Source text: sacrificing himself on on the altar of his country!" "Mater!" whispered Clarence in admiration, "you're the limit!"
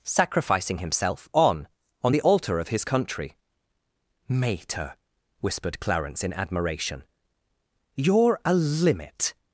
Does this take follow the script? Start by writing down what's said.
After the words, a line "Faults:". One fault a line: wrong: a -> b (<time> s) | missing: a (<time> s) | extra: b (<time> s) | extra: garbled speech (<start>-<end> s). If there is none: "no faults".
sacrificing himself on on the altar of his country!" "Mater!" whispered Clarence in admiration, "you're a limit!"
Faults:
wrong: the -> a (8.4 s)